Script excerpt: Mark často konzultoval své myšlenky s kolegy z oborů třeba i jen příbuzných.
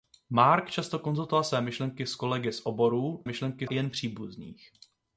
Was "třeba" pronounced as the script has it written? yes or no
no